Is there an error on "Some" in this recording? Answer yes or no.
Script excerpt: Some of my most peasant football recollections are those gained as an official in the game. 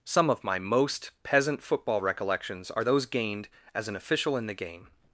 no